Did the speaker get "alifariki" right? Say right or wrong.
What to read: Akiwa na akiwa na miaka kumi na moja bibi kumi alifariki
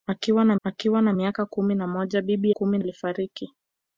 right